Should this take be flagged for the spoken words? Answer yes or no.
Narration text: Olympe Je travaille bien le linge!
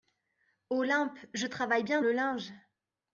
no